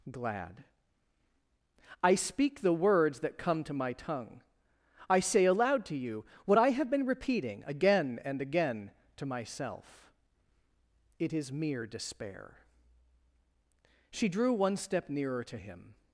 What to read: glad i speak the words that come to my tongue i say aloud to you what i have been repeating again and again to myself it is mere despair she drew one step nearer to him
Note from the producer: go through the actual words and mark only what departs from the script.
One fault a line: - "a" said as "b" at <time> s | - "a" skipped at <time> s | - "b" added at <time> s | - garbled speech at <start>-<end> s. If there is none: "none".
none